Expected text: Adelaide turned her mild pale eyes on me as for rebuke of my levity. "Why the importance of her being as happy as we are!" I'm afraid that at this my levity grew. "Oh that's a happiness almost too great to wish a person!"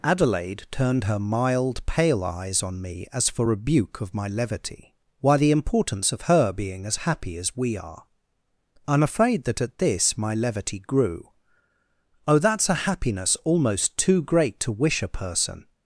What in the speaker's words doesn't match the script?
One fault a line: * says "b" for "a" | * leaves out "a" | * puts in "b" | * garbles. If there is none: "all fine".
all fine